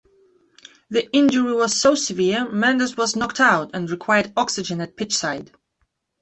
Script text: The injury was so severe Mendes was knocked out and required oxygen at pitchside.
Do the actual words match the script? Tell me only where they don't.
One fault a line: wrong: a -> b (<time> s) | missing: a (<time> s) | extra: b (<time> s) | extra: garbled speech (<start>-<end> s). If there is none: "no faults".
no faults